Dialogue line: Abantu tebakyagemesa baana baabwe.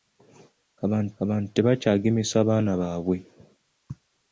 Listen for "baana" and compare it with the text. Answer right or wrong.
right